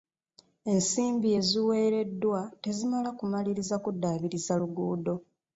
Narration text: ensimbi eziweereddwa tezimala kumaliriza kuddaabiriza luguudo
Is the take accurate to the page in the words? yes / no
yes